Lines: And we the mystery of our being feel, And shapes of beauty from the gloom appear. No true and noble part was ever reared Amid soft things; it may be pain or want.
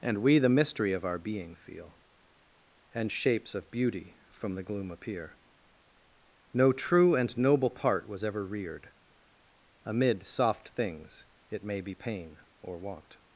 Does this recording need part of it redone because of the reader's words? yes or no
no